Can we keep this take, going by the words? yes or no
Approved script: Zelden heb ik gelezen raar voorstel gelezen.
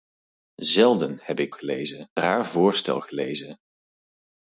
yes